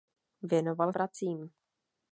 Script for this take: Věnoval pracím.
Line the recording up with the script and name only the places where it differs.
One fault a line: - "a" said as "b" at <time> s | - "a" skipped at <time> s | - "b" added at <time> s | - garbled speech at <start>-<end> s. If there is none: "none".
none